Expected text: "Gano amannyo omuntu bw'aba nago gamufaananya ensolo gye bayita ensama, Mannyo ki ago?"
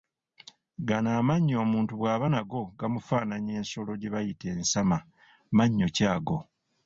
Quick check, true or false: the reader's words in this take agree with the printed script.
true